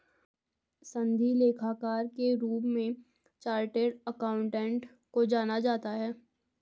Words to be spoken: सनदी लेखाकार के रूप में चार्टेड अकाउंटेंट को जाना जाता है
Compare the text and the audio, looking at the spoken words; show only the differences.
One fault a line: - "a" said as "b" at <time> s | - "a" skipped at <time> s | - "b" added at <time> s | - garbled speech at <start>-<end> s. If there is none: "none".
none